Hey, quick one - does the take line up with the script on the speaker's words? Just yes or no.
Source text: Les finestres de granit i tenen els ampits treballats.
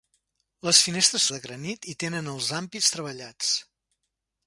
yes